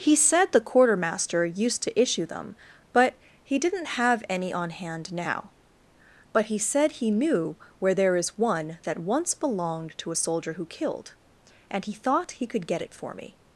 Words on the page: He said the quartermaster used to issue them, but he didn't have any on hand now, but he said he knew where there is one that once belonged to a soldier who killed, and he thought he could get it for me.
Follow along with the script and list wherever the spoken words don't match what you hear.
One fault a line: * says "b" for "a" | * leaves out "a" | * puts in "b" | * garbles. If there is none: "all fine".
all fine